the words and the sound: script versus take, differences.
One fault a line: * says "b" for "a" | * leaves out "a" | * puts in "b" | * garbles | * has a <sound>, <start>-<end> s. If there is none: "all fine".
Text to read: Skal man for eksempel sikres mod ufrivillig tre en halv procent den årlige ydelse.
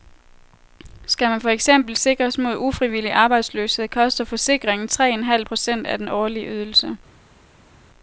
* puts in "arbejdsløshed koster forsikringen"
* puts in "af"